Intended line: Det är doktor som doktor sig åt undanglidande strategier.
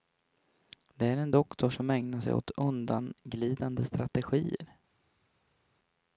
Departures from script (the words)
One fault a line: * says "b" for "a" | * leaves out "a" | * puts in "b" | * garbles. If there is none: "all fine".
* puts in "en"
* says "ägnar" for "doktor"